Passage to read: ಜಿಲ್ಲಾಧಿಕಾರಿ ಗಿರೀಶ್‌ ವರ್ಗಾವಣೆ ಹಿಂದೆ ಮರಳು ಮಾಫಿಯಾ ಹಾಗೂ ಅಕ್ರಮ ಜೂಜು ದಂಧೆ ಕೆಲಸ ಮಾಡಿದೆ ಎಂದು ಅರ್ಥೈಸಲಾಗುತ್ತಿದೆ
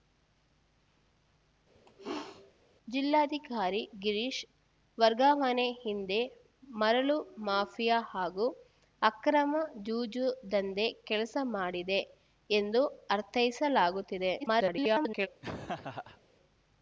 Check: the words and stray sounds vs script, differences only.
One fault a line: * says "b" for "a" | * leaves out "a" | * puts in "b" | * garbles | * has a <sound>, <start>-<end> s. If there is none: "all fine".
* has a sneeze, 1.8-2.5 s
* garbles
* has a laugh, 15.4-16.2 s